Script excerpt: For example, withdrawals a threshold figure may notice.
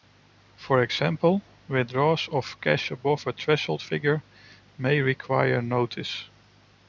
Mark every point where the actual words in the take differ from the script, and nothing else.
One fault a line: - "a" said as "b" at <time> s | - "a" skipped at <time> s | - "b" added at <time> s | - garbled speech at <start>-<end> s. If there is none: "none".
- "of cash above" added at 2.3 s
- "require" added at 5.0 s